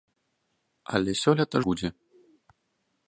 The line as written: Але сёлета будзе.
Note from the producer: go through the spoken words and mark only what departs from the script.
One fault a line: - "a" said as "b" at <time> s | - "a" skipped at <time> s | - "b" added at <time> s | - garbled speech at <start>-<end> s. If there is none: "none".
none